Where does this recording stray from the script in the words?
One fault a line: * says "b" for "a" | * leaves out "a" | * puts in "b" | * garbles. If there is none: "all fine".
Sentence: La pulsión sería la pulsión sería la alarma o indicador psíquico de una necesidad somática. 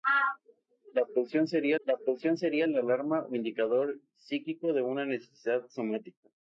all fine